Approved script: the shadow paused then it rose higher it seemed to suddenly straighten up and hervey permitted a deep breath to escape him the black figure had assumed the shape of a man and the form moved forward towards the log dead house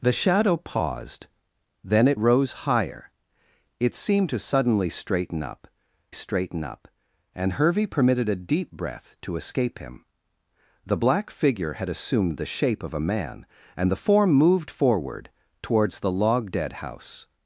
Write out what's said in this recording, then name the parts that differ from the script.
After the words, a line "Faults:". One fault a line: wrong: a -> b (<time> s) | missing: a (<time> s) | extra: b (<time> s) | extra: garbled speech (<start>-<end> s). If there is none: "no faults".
the shadow paused then it rose higher it seemed to suddenly straighten up straighten up and hervey permitted a deep breath to escape him the black figure had assumed the shape of a man and the form moved forward towards the log dead house
Faults:
extra: straighten up (6.1 s)